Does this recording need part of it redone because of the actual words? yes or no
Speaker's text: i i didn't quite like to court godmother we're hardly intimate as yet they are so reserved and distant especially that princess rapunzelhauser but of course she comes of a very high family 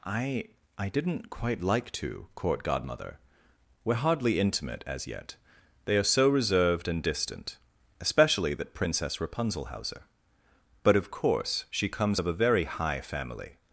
no